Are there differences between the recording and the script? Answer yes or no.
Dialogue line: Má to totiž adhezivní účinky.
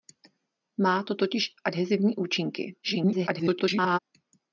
yes